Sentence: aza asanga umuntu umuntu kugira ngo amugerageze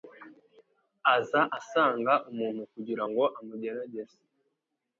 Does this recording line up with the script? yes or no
no